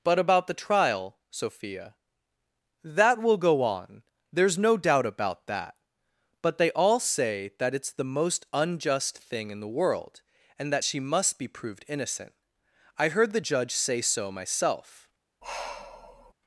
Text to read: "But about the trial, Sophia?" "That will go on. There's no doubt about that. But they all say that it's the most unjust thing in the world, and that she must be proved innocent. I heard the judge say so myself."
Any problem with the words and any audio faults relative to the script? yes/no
yes